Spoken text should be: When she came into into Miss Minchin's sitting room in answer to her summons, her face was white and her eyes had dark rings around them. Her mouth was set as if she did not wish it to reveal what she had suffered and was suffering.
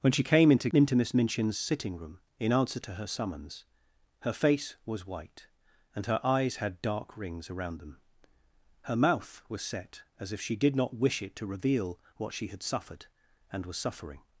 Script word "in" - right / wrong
right